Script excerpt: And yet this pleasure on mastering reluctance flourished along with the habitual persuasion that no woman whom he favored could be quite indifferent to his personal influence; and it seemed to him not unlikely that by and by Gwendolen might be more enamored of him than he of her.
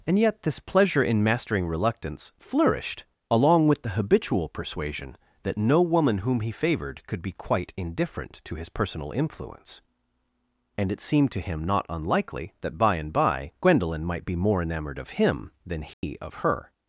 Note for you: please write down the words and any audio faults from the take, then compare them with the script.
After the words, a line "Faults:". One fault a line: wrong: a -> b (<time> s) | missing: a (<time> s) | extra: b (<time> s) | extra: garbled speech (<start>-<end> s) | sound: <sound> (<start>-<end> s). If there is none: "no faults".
And yet this pleasure in mastering reluctance flourished along with the habitual persuasion that no woman whom he favored could be quite indifferent to his personal influence; and it seemed to him not unlikely that by and by Gwendolen might be more enamored of him than he of her.
Faults:
wrong: on -> in (1.0 s)
sound: dropout (15.9-16.0 s)